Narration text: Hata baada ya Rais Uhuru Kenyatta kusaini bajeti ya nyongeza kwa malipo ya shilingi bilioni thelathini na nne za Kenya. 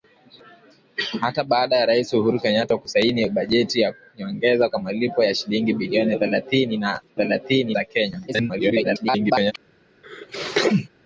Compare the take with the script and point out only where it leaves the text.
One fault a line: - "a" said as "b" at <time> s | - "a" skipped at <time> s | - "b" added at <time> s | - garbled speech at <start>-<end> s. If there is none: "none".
- "nne" said as "thelathini" at 7.2 s
- garbled speech at 8.3-9.5 s